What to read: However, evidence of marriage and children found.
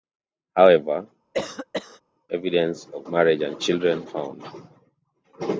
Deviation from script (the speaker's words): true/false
false